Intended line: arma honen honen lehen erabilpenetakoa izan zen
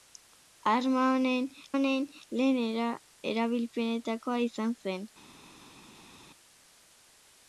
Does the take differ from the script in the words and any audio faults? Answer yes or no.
no